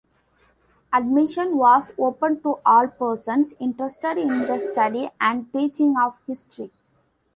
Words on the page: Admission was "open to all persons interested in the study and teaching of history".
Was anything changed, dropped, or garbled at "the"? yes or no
no